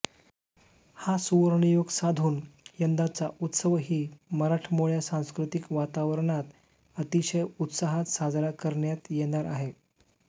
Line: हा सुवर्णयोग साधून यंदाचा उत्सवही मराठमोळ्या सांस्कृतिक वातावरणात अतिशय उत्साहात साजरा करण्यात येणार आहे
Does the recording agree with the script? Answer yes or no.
yes